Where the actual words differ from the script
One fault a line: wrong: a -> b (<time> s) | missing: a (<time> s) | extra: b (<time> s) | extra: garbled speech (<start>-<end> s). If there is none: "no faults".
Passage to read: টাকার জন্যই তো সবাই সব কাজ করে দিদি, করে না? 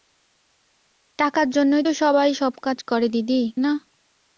missing: করে (3.4 s)